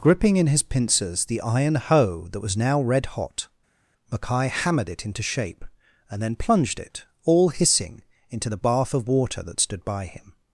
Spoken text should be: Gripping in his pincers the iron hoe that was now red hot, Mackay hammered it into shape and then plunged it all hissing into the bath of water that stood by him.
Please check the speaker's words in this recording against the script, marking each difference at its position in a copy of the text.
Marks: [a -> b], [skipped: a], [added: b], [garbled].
Gripping in his pincers the iron hoe that was now red hot, Mackay hammered it into shape and then plunged it all hissing into the bath of water that stood by him.